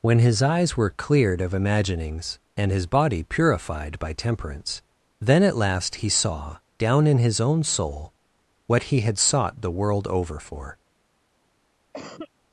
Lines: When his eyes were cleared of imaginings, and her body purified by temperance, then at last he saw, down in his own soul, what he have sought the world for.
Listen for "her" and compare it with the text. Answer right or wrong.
wrong